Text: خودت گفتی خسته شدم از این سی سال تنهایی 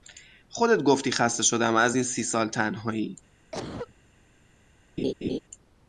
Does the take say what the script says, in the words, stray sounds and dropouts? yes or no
no